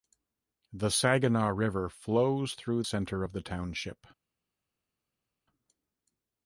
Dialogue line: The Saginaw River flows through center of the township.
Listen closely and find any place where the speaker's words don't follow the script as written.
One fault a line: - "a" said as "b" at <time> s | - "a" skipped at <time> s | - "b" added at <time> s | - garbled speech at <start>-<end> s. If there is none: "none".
none